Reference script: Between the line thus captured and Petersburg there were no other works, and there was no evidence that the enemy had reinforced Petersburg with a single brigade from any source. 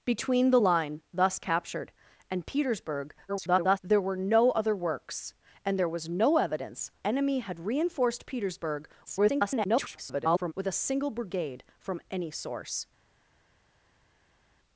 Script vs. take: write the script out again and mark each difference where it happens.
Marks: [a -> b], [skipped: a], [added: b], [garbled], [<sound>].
Between the line thus captured and Petersburg [garbled] there were no other works, and there was no evidence [skipped: that the] enemy had reinforced Petersburg [garbled] with a single brigade from any source.